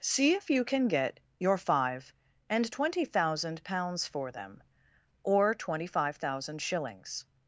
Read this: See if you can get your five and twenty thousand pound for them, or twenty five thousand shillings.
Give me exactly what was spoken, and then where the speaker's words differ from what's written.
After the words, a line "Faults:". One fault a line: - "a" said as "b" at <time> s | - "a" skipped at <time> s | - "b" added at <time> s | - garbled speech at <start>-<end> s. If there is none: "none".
See if you can get your five and twenty thousand pounds for them, or twenty five thousand shillings.
Faults:
- "pound" said as "pounds" at 3.6 s